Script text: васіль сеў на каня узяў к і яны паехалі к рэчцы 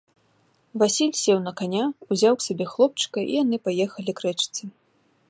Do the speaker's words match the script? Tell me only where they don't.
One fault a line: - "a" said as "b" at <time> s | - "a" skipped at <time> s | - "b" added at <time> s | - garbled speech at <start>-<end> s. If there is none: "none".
- "сабе хлопчыка" added at 2.5 s